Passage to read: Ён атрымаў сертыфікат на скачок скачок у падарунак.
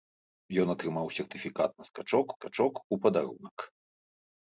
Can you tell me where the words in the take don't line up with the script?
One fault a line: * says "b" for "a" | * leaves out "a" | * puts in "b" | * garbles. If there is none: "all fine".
all fine